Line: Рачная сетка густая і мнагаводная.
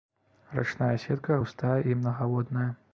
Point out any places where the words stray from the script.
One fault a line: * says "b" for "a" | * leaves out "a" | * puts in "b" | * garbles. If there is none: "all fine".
all fine